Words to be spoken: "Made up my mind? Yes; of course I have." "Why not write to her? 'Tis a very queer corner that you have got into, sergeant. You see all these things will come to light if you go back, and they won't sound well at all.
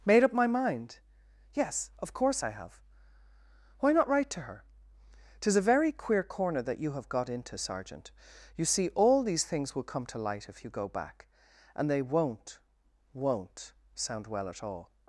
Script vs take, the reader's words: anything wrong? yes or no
yes